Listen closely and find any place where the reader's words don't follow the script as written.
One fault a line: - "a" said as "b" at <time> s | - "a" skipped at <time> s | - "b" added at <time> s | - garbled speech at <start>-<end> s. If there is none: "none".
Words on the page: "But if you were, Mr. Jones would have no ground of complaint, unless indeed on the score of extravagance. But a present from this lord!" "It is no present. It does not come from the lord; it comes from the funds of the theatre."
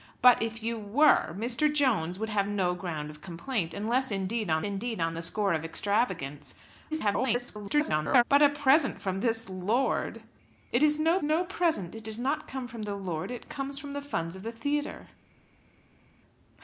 - "indeed on" added at 4.6 s
- garbled speech at 6.9-8.2 s
- "no" added at 11.2 s